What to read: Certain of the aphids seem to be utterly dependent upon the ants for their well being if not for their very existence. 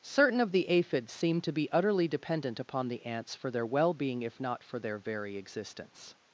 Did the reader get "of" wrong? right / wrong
right